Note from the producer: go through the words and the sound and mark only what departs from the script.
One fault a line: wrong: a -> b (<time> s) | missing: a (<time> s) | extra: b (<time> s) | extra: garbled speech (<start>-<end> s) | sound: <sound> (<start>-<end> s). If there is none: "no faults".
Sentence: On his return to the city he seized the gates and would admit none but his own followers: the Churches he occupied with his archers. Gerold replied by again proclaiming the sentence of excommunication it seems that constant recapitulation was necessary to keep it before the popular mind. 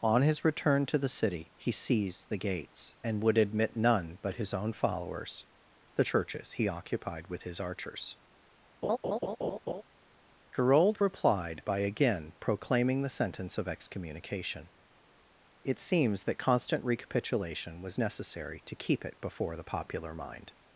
sound: laugh (8.8-9.8 s)